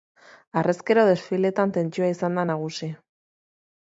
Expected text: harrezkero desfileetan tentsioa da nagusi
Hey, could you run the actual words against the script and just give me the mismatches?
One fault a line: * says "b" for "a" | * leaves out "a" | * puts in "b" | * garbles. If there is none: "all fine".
* puts in "izan"